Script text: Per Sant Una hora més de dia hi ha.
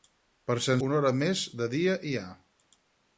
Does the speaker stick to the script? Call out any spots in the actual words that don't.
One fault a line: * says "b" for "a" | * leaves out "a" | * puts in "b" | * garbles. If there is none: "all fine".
all fine